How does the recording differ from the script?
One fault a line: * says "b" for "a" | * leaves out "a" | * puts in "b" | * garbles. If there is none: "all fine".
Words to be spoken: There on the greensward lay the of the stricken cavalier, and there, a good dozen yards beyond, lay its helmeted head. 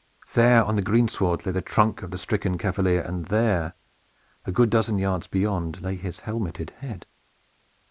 * puts in "trunk"
* says "his" for "its"